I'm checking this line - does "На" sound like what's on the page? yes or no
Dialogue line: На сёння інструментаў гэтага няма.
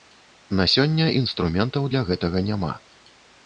yes